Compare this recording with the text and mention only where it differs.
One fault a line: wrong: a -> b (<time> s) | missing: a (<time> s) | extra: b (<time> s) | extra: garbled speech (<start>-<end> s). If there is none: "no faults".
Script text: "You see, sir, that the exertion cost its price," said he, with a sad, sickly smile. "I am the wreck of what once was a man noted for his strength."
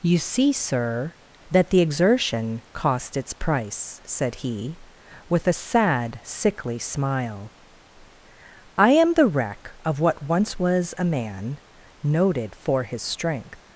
no faults